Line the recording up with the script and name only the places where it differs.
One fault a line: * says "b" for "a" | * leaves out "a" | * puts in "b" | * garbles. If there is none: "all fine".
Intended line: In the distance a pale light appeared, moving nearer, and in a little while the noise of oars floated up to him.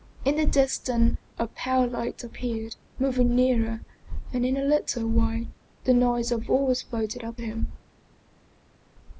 * leaves out "to"